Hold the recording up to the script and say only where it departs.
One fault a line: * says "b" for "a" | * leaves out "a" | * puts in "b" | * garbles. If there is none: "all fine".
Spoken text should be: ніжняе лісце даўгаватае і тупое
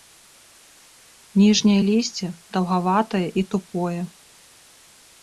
all fine